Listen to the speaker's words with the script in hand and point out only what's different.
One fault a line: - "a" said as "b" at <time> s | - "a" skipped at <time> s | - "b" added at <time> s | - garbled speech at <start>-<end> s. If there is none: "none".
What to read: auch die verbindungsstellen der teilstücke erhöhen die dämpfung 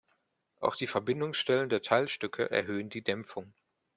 none